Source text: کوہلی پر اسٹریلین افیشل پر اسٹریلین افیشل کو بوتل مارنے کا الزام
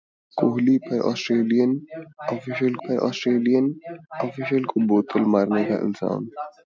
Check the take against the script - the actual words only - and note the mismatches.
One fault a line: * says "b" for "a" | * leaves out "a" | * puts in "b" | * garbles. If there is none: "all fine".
all fine